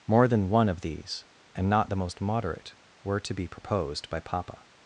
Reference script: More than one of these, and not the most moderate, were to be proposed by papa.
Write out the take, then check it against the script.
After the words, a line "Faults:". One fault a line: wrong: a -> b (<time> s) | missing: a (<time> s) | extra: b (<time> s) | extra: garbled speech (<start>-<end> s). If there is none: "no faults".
More than one of these, and not the most moderate, were to be proposed by papa.
Faults:
no faults